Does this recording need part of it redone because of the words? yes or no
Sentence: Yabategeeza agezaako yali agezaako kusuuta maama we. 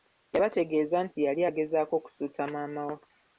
yes